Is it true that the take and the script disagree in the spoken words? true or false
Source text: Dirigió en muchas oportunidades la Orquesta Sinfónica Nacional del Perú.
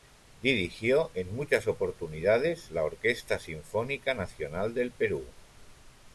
false